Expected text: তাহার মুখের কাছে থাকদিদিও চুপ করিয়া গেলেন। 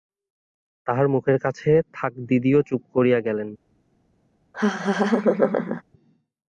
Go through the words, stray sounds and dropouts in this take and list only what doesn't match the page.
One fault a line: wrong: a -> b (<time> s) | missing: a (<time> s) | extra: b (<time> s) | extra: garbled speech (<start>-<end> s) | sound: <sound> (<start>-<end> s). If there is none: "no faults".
sound: laugh (4.5-5.8 s)